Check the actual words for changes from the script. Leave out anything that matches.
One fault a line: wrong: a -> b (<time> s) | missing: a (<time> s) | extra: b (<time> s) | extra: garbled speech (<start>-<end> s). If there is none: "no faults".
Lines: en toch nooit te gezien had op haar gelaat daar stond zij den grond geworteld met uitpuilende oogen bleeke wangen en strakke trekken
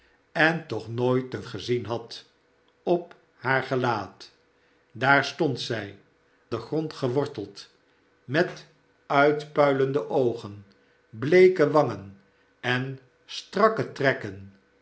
no faults